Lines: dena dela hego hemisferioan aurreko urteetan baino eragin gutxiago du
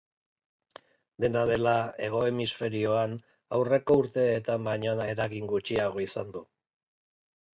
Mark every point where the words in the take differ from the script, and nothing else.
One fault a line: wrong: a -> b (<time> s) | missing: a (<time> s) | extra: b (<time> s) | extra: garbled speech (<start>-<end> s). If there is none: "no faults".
extra: izan (6.1 s)